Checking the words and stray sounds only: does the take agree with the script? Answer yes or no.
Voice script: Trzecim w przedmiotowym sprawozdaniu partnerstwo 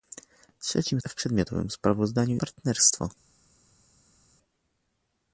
yes